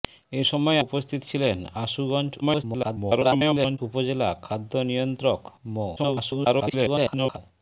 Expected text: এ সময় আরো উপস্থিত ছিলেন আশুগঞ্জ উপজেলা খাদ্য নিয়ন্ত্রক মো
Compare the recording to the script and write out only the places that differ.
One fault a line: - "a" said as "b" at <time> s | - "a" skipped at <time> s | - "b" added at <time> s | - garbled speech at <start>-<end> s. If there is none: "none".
- "আরো" skipped at 0.8 s
- garbled speech at 2.4-3.8 s
- garbled speech at 6.0-7.4 s